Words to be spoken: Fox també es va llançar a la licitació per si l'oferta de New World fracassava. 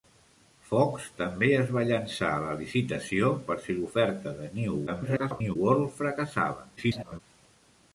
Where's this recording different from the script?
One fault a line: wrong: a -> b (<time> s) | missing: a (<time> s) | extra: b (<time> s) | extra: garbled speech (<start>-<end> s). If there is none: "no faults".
extra: garbled speech (4.9-5.6 s)
extra: garbled speech (6.8-7.2 s)